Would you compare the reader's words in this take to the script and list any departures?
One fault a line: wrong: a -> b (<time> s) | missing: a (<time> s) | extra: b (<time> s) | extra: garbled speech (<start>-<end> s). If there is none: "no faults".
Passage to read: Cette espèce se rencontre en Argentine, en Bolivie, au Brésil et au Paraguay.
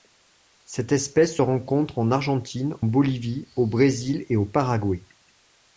missing: en (2.7 s)